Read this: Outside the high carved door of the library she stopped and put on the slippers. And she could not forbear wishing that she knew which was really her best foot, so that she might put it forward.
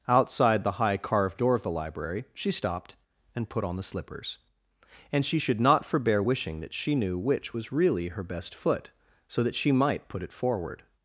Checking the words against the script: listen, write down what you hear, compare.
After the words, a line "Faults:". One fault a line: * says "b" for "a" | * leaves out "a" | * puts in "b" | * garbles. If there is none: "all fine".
Outside the high carved door of the library she stopped and put on the slippers. And she should not forbear wishing that she knew which was really her best foot, so that she might put it forward.
Faults:
* says "should" for "could"